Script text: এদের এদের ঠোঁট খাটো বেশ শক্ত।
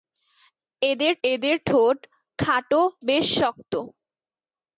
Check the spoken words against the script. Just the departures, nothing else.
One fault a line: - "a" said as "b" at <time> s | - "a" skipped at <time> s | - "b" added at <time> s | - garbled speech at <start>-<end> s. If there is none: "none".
none